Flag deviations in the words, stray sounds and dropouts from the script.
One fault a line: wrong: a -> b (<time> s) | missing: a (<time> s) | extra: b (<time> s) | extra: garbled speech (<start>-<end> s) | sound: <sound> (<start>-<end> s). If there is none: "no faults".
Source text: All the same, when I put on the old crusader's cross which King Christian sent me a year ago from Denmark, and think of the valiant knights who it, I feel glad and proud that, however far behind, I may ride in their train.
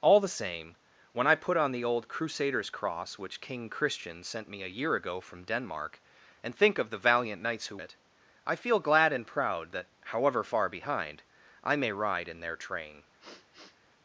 sound: sniff (13.2-13.8 s)